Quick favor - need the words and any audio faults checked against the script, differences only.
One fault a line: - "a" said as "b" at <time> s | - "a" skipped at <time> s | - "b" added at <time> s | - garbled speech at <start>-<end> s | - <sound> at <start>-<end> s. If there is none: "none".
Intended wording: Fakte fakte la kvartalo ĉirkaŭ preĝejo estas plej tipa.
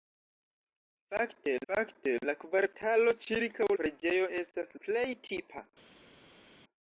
none